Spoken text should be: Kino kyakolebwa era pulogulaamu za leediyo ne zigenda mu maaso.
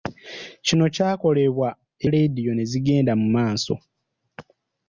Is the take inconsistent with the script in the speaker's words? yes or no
yes